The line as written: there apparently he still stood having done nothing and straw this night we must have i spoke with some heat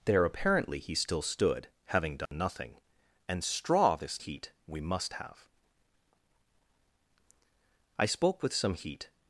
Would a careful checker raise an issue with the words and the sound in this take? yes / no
yes